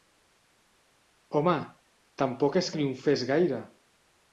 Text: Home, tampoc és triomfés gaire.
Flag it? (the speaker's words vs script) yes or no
no